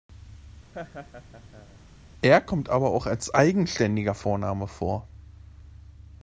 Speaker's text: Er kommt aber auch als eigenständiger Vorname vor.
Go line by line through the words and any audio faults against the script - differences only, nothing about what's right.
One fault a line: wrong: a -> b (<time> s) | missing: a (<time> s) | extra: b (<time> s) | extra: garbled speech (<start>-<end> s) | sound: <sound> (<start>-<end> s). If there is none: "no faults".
sound: laugh (0.7-1.8 s)